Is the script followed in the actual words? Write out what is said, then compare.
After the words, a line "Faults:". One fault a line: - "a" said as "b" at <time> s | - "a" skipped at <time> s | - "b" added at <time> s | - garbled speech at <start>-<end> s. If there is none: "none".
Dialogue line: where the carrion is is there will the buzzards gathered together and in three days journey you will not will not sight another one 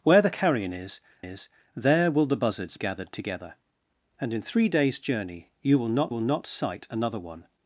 where the carrion is is there will the buzzards gathered together and in three days journey you will not will not sight another one
Faults:
none